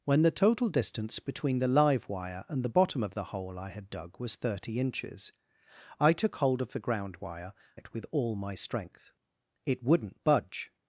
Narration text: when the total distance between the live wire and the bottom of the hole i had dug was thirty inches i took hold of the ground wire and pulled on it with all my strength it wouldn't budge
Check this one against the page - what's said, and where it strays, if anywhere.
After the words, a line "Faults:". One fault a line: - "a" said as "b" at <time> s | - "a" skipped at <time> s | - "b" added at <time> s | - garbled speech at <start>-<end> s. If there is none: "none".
when the total distance between the live wire and the bottom of the hole i had dug was thirty inches i took hold of the ground wire it with all my strength it wouldn't budge
Faults:
- "and pulled on" skipped at 7.5 s